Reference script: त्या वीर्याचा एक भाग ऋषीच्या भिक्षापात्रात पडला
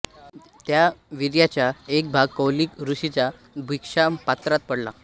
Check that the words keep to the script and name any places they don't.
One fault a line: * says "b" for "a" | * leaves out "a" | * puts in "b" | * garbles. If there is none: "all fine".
* puts in "कौलिक"